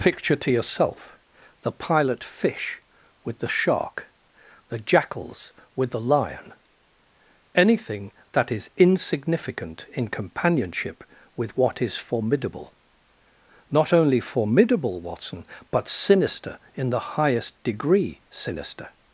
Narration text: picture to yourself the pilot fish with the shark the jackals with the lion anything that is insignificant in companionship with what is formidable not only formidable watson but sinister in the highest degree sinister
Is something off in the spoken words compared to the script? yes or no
no